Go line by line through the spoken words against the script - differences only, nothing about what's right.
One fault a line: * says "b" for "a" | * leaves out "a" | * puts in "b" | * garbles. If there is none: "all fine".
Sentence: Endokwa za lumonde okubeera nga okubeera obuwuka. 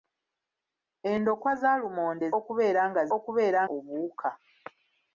all fine